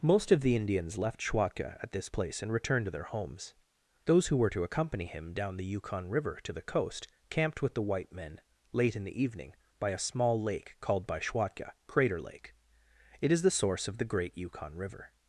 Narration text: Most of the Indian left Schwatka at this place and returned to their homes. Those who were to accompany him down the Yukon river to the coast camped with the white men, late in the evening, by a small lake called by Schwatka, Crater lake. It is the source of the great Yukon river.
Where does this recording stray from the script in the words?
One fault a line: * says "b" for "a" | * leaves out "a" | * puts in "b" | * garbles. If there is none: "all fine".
* says "Indians" for "Indian"